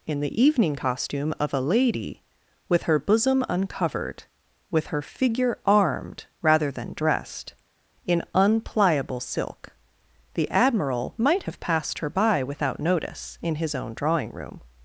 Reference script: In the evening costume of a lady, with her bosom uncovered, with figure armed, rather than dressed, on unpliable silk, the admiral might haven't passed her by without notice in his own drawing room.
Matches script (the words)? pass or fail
fail